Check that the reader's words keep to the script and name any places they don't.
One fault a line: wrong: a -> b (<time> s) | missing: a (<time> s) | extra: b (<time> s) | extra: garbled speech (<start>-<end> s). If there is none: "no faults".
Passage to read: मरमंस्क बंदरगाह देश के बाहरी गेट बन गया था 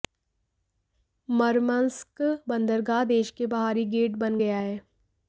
wrong: था -> है (4.6 s)